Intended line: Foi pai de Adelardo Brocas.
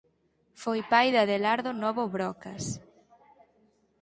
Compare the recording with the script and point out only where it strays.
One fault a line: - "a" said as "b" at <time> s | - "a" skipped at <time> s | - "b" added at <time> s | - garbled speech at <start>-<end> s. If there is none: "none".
- "Novo" added at 1.8 s